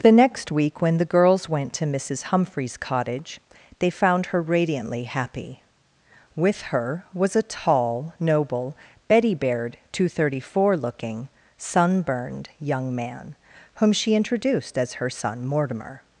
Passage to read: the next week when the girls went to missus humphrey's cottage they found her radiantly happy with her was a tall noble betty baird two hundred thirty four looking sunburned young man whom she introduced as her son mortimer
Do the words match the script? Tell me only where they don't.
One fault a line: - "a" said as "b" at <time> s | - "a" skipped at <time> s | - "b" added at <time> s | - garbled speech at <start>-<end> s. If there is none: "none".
none